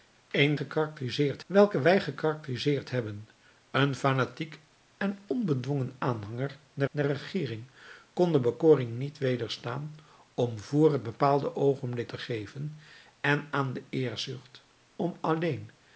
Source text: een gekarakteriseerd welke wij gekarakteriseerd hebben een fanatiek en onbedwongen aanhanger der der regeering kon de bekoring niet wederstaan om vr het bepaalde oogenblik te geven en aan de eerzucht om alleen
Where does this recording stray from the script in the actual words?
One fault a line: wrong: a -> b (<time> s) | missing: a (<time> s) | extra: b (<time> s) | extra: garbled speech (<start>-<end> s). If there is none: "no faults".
no faults